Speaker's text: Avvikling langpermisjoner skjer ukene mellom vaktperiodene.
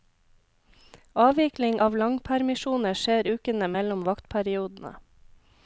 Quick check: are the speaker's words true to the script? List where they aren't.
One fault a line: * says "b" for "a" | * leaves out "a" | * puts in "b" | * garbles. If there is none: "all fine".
* puts in "av"